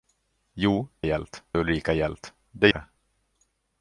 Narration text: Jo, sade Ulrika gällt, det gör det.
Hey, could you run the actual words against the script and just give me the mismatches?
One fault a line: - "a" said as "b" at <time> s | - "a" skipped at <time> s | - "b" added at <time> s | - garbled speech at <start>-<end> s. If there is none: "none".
- "sade" said as "gällt" at 1.0 s
- "gör" skipped at 2.7 s